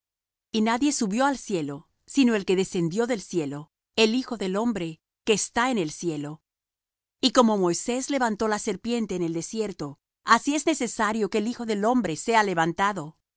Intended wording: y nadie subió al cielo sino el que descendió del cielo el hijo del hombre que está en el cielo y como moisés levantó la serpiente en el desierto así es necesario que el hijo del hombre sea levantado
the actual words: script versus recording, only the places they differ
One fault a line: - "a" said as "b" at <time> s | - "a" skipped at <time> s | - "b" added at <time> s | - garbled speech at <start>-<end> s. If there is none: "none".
none